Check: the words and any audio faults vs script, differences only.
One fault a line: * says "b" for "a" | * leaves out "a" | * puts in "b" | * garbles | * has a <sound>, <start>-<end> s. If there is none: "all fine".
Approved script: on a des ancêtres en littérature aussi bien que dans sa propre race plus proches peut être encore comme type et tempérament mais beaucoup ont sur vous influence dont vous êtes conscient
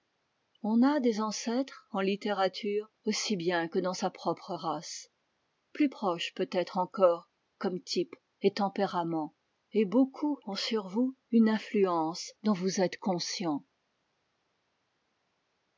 * says "et" for "mais"
* puts in "une"